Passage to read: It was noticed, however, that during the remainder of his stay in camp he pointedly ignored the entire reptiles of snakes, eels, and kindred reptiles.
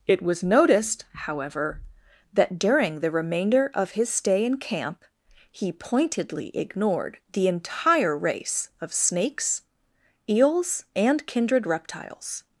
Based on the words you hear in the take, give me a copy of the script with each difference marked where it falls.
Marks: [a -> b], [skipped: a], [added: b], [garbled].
It was noticed, however, that during the remainder of his stay in camp he pointedly ignored the entire [reptiles -> race] of snakes, eels, and kindred reptiles.